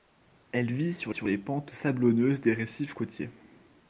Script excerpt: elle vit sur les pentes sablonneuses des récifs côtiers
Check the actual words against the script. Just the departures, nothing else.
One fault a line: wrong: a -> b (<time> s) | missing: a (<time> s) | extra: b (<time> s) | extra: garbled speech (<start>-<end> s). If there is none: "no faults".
extra: sur (1.1 s)